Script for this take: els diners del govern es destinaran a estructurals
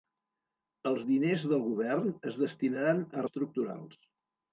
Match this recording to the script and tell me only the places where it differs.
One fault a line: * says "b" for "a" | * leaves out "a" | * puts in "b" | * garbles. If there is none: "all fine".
all fine